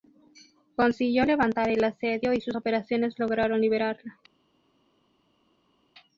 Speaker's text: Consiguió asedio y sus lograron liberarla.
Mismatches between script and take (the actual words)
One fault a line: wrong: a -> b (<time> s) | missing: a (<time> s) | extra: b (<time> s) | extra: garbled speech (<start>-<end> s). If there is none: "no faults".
extra: levantar el (1.2 s)
extra: operaciones (2.5 s)